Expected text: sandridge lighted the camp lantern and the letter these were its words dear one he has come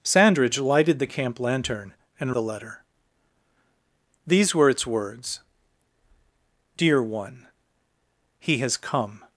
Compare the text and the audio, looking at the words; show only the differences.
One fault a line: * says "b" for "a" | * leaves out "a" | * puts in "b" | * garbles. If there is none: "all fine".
all fine